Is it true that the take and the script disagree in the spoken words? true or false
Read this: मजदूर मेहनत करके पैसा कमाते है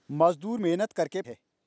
true